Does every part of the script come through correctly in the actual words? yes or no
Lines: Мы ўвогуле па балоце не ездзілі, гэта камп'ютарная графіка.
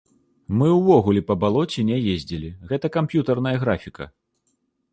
yes